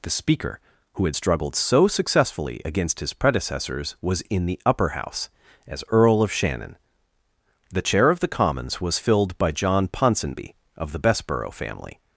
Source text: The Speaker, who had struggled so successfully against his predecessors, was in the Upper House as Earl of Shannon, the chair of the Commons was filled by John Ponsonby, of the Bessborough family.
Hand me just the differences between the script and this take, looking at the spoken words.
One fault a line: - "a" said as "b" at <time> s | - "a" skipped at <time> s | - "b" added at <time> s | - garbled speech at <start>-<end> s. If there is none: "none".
none